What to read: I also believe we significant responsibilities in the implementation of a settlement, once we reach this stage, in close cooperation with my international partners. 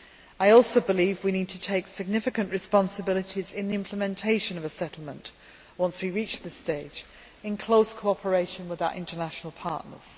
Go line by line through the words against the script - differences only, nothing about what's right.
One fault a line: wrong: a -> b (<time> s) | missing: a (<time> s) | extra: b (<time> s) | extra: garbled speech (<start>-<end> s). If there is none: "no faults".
extra: need to take (1.3 s)
wrong: my -> our (8.8 s)